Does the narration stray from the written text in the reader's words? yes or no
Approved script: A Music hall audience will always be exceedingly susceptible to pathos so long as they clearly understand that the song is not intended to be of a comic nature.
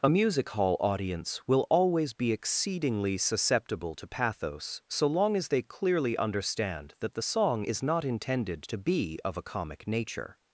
no